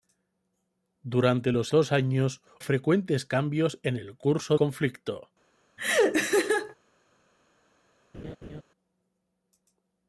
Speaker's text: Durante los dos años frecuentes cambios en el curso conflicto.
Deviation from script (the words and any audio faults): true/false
true